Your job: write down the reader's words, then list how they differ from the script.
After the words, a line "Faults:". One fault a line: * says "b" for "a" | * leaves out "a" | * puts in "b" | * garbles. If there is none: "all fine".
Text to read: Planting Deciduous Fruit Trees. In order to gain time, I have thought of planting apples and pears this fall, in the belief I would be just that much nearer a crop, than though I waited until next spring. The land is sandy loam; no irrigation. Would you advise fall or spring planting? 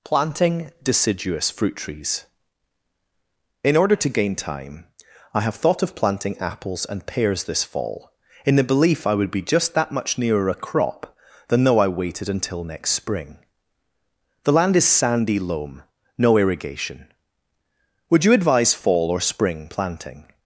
Planting Deciduous Fruit Trees. In order to gain time, I have thought of planting apples and pears this fall, in the belief I would be just that much nearer a crop, than though I waited until next spring. The land is sandy loam; no irrigation. Would you advise fall or spring planting?
Faults:
all fine